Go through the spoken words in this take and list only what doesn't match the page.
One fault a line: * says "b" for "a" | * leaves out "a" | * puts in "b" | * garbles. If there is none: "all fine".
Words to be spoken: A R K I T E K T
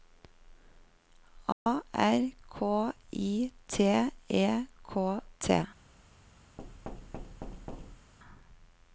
all fine